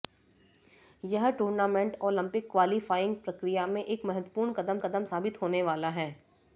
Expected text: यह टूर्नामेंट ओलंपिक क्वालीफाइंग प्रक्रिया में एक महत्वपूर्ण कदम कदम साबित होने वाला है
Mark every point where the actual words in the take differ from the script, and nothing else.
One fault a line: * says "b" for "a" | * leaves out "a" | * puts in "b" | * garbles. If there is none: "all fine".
all fine